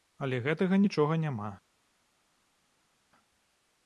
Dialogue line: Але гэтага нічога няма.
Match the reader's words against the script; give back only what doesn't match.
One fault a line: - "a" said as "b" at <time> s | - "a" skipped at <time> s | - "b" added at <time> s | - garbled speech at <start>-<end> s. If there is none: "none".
none